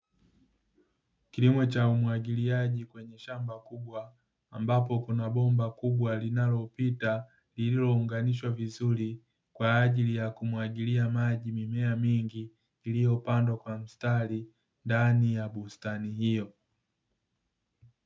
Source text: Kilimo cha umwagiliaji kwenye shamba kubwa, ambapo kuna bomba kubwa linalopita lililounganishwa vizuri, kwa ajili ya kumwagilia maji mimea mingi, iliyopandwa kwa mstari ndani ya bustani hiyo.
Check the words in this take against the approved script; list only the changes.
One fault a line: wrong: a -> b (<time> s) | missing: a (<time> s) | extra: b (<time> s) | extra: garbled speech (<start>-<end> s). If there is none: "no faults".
no faults